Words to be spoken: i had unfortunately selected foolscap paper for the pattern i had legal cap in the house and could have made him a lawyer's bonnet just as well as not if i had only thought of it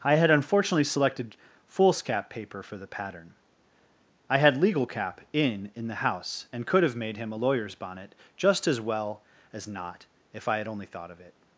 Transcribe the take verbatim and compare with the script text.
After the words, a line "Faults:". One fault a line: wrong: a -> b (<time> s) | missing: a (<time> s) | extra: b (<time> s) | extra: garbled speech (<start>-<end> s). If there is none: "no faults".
i had unfortunately selected foolscap paper for the pattern i had legal cap in in the house and could have made him a lawyer's bonnet just as well as not if i had only thought of it
Faults:
extra: in (5.8 s)